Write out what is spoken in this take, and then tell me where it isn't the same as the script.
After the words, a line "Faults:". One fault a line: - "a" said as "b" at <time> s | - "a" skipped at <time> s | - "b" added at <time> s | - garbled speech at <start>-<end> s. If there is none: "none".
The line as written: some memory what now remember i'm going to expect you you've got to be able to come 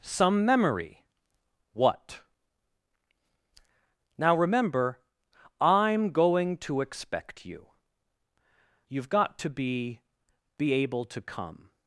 some memory what now remember i'm going to expect you you've got to be be able to come
Faults:
- "be" added at 10.6 s